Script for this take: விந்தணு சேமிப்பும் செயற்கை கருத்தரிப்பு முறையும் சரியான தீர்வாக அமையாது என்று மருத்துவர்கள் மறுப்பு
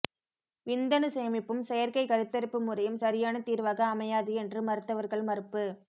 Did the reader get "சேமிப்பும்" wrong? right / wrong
right